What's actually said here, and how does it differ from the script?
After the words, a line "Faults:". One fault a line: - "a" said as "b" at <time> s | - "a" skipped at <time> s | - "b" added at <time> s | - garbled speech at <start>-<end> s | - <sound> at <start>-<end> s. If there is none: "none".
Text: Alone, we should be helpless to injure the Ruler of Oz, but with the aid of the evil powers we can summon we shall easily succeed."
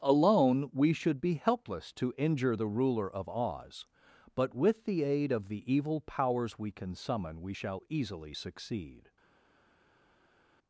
Alone, we should be helpless to injure the Ruler of Oz, but with the aid of the evil powers we can summon we shall easily succeed."
Faults:
none